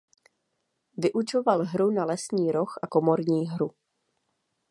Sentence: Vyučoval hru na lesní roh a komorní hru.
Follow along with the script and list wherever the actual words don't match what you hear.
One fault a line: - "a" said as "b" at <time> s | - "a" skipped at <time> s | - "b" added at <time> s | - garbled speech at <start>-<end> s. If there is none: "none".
none